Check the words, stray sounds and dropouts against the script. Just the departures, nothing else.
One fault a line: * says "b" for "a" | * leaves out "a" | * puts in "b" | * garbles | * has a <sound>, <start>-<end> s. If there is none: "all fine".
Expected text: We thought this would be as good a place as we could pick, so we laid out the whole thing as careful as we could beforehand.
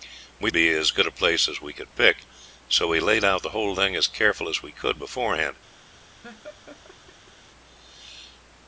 * leaves out "thought this would"
* has a laugh, 6.2-7.3 s